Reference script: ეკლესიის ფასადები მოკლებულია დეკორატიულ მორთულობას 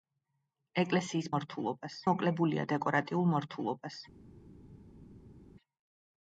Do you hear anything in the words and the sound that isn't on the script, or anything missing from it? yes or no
yes